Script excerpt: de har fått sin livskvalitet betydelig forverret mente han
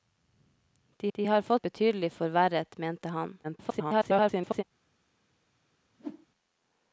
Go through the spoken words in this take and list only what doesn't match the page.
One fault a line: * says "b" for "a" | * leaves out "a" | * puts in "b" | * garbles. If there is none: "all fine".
* puts in "de"
* leaves out "sin livskvalitet"
* garbles